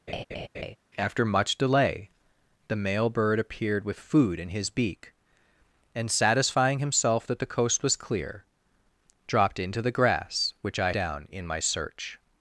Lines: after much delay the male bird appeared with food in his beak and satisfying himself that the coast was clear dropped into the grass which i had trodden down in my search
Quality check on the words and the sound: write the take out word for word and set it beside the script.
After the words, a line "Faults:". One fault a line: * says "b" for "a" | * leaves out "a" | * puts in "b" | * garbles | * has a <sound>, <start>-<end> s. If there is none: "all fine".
after much delay the male bird appeared with food in his beak and satisfying himself that the coast was clear dropped into the grass which i down in my search
Faults:
* has a laugh, 0.1-0.8 s
* leaves out "had trodden"